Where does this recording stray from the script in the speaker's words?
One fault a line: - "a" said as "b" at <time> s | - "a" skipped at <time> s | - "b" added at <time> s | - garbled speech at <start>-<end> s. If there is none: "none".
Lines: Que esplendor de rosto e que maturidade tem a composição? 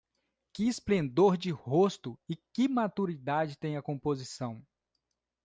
none